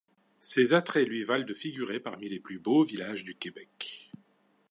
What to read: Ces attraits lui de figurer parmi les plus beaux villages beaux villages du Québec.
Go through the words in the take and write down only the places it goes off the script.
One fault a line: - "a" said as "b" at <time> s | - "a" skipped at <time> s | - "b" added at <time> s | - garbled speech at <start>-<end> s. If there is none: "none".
- "valent" added at 1.2 s
- "beaux villages" skipped at 3.2 s